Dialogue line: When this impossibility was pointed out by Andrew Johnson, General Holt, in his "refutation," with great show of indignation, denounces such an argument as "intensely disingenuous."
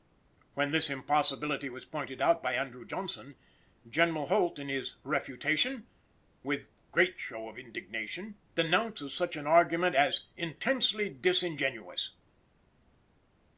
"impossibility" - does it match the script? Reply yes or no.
yes